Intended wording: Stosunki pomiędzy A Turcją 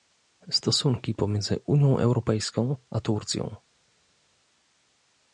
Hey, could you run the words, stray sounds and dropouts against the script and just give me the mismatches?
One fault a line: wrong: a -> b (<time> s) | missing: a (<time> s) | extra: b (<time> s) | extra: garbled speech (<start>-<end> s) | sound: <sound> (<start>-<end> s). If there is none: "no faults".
extra: Unią Europejską (1.6 s)